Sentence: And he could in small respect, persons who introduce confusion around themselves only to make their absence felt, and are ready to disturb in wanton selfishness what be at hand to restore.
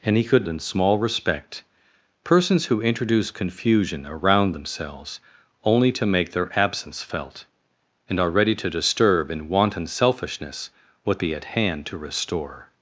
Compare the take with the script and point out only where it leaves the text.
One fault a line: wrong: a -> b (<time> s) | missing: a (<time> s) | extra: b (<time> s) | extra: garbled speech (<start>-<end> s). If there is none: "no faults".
no faults